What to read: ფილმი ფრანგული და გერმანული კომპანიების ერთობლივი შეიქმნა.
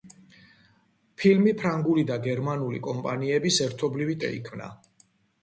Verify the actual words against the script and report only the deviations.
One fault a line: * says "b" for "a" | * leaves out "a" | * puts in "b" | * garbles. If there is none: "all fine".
all fine